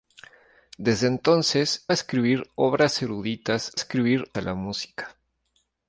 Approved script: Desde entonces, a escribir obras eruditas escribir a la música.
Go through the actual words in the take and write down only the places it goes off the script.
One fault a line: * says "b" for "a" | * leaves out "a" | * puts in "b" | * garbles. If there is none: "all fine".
all fine